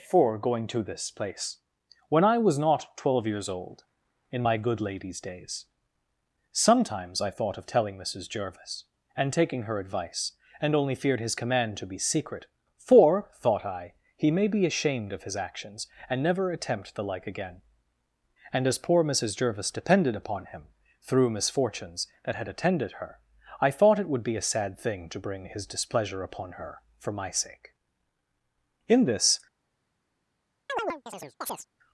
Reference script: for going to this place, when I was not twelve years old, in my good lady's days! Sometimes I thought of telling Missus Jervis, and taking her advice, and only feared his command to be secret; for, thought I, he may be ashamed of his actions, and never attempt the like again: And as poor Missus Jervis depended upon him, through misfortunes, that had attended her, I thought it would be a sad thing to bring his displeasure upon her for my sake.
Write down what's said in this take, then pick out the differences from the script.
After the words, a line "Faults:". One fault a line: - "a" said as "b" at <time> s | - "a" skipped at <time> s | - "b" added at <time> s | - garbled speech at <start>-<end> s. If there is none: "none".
for going to this place, when I was not twelve years old, in my good lady's days! Sometimes I thought of telling Missus Jervis, and taking her advice, and only feared his command to be secret; for, thought I, he may be ashamed of his actions, and never attempt the like again: And as poor Missus Jervis depended upon him, through misfortunes, that had attended her, I thought it would be a sad thing to bring his displeasure upon her for my sake. In this
Faults:
- "In this" added at 28.9 s